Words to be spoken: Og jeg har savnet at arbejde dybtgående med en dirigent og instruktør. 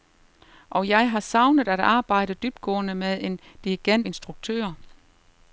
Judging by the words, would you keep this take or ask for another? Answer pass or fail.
fail